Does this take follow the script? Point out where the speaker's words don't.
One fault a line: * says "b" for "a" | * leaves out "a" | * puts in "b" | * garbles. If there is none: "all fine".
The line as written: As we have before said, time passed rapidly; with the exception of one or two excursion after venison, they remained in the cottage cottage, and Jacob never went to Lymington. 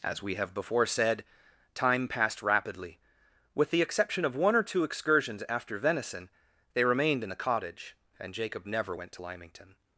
* says "excursions" for "excursion"
* leaves out "cottage"